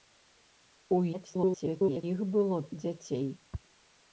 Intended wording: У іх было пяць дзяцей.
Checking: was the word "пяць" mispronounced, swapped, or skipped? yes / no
yes